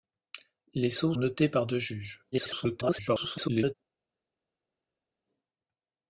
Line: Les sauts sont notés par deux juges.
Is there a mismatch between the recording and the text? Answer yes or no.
yes